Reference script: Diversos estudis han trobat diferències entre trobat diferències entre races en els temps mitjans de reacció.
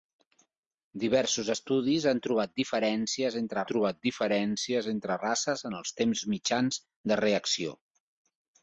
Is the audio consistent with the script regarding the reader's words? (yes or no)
yes